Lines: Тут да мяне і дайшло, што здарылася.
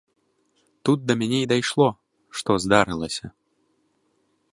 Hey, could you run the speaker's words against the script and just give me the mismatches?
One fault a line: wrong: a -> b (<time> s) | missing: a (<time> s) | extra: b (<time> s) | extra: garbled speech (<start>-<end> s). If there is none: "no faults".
no faults